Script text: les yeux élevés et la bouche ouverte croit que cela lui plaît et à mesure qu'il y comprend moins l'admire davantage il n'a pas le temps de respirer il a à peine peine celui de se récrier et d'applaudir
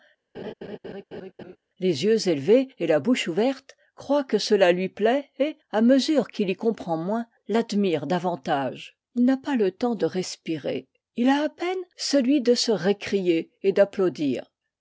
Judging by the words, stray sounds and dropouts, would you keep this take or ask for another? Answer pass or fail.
fail